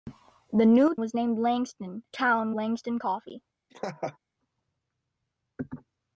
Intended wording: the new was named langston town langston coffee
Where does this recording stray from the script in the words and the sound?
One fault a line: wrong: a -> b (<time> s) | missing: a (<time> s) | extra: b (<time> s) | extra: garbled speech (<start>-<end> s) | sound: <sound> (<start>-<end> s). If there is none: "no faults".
sound: laugh (3.7-4.2 s)